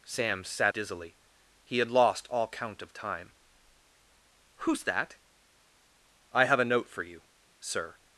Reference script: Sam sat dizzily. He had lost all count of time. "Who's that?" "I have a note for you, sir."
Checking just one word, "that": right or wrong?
right